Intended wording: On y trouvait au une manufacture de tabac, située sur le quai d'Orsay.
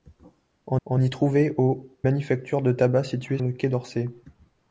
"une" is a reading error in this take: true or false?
true